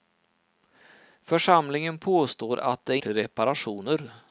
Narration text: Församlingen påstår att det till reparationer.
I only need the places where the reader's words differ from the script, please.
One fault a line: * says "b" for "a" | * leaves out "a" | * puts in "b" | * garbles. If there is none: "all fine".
all fine